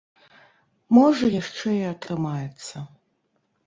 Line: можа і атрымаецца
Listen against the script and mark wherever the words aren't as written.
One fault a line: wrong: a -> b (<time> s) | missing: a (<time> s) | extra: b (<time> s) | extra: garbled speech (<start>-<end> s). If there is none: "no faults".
extra: яшчэ (1.4 s)